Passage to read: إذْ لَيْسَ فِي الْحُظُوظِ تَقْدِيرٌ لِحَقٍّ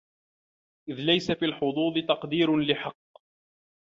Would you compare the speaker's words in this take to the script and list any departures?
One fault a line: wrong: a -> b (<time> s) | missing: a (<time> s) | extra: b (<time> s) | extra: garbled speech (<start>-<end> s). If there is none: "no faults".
no faults